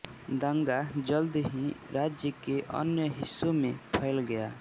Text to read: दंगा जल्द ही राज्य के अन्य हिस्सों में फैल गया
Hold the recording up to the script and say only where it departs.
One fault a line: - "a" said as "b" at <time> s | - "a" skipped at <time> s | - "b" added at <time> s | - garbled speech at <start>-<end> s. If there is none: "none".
none